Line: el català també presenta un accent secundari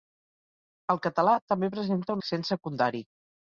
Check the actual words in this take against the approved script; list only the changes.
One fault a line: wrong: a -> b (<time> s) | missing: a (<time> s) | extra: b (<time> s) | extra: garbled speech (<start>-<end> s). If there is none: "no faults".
missing: un (2.2 s)